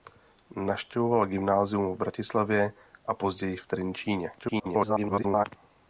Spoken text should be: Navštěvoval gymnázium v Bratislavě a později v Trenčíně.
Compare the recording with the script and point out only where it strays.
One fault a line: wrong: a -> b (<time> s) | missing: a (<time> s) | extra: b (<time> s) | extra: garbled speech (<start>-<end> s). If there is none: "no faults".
extra: garbled speech (4.4-5.5 s)